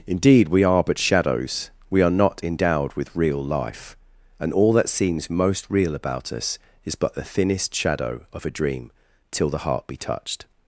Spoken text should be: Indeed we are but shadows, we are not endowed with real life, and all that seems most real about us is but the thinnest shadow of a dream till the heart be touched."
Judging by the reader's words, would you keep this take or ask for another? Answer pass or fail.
pass